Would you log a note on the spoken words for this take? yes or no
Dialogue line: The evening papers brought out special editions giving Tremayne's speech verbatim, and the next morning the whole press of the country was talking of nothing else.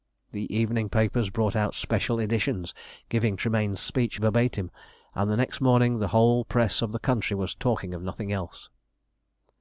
no